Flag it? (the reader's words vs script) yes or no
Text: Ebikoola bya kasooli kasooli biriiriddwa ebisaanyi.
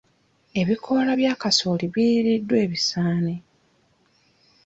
yes